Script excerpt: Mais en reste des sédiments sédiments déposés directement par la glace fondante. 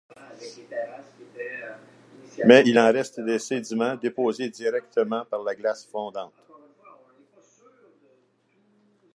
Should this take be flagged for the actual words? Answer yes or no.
yes